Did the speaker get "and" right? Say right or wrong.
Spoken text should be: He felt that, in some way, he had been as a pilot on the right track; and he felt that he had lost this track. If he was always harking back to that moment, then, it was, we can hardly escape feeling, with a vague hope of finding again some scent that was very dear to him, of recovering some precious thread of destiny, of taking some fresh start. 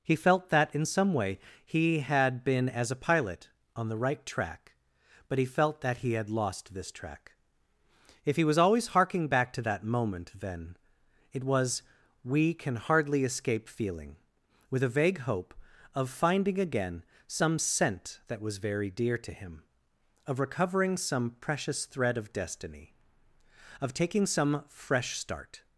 wrong